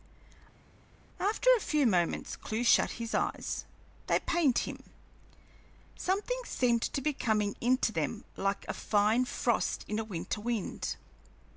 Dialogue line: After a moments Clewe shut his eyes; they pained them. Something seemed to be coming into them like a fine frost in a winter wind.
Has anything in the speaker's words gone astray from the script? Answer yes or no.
yes